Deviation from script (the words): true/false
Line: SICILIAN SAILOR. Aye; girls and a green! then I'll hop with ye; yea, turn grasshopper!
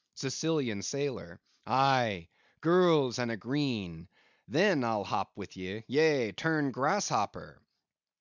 false